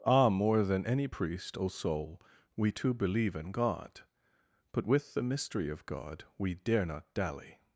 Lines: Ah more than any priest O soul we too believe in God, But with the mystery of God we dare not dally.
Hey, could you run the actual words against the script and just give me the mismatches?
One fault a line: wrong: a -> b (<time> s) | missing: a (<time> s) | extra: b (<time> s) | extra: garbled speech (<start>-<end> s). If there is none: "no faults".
no faults